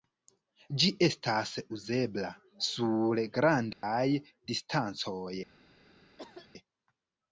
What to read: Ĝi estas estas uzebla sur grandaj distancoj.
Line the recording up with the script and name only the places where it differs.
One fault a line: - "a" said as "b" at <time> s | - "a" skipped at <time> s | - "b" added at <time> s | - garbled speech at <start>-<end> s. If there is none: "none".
- "estas" skipped at 1.5 s